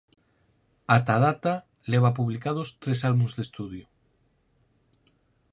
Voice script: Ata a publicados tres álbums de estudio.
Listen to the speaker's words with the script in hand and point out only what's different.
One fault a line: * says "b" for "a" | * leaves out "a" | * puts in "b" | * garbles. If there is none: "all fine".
* puts in "data leva"